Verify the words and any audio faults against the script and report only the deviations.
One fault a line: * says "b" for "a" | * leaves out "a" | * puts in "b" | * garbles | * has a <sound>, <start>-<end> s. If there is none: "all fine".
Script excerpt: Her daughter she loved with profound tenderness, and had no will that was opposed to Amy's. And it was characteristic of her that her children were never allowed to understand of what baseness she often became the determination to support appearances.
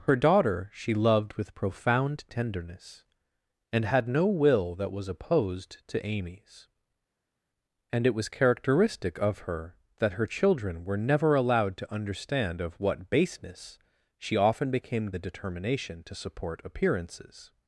all fine